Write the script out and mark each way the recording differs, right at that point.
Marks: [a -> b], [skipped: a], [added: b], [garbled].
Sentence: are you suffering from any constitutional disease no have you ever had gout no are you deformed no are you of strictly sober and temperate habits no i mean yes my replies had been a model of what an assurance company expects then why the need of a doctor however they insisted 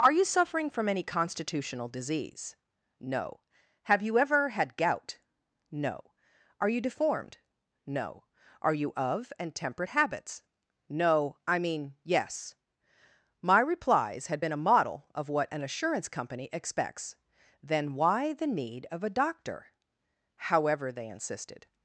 are you suffering from any constitutional disease no have you ever had gout no are you deformed no are you of [skipped: strictly sober] and temperate habits no i mean yes my replies had been a model of what an assurance company expects then why the need of a doctor however they insisted